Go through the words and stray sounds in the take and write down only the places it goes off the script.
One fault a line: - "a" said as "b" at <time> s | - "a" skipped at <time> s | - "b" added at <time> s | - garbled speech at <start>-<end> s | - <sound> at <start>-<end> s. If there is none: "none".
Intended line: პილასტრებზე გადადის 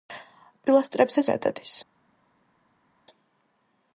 none